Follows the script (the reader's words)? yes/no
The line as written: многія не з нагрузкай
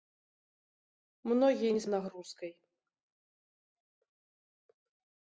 yes